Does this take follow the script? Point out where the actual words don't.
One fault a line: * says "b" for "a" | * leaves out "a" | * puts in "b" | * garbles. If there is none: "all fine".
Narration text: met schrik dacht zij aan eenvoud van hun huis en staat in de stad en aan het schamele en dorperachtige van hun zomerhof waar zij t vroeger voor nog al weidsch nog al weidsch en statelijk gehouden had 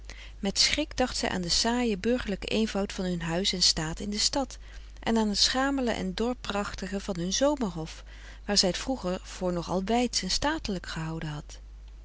* puts in "den saaien burgerlijken"
* leaves out "nog al weidsch"